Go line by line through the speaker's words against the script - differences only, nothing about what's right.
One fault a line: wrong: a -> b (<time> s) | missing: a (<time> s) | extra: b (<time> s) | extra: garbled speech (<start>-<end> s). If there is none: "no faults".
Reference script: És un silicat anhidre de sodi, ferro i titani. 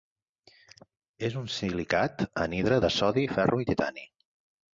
no faults